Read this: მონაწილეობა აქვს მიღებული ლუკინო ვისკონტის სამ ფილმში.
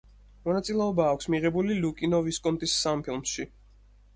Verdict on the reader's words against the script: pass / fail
pass